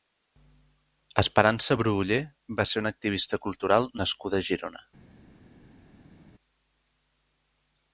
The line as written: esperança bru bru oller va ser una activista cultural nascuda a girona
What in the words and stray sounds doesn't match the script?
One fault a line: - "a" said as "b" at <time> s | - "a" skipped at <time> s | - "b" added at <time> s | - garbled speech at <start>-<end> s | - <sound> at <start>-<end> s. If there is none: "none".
- "bru" skipped at 1.9 s